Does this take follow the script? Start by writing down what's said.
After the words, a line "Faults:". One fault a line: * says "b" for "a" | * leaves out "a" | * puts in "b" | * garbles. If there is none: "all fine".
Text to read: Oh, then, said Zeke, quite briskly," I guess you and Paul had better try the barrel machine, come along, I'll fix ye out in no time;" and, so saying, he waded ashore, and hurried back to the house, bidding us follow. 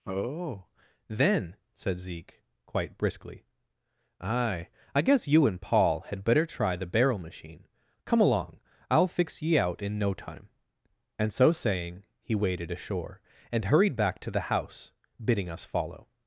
Oh, then, said Zeke, quite briskly," aye I guess you and Paul had better try the barrel machine, come along, I'll fix ye out in no time;" and, so saying, he waded ashore, and hurried back to the house, bidding us follow.
Faults:
* puts in "aye"